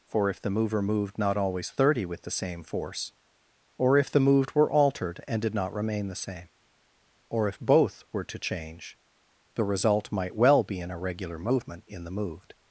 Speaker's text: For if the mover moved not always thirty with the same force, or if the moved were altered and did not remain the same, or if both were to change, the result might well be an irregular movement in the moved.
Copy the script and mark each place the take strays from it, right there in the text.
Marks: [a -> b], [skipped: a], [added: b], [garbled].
For if the mover moved not always thirty with the same force, or if the moved were altered and did not remain the same, or if both were to change, the result might well be an irregular movement in the moved.